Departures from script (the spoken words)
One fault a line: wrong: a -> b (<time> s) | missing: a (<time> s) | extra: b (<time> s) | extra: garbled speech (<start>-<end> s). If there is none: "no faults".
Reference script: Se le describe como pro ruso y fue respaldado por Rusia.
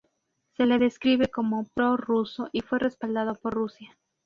no faults